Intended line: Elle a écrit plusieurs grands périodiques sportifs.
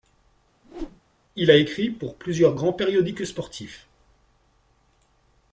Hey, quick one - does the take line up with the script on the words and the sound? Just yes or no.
no